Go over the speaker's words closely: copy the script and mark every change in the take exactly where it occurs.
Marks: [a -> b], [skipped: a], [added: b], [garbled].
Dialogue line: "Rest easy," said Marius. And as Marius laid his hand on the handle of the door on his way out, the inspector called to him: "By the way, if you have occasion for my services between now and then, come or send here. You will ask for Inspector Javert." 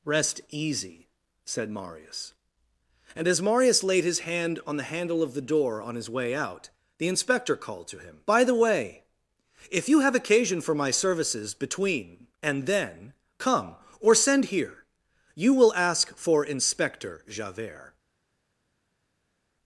"Rest easy," said Marius. And as Marius laid his hand on the handle of the door on his way out, the inspector called to him: "By the way, if you have occasion for my services between [skipped: now] and then, come or send here. You will ask for Inspector Javert."